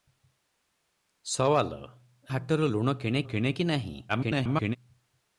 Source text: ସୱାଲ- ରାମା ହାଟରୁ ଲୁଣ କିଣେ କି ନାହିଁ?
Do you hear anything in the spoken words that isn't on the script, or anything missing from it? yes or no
yes